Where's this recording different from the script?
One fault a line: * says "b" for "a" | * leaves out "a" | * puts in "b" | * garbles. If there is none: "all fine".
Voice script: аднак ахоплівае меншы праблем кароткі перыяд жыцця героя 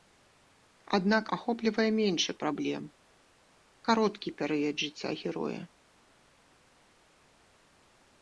all fine